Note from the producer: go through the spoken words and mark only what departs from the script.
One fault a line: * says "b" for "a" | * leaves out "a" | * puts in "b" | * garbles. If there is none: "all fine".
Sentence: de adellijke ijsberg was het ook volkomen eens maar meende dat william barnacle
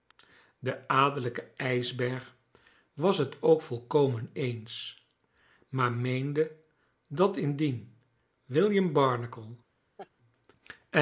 * puts in "indien"